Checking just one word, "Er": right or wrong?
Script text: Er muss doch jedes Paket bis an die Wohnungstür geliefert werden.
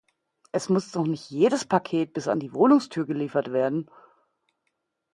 wrong